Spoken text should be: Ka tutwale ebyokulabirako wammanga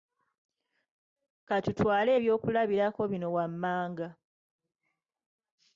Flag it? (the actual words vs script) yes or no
yes